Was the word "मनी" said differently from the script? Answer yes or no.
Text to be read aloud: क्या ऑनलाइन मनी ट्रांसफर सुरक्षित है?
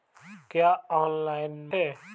yes